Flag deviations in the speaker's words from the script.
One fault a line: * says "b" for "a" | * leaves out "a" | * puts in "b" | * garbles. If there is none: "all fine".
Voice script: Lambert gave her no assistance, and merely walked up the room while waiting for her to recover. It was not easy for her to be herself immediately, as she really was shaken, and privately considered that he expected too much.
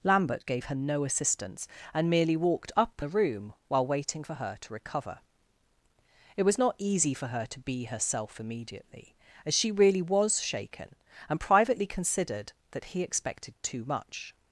all fine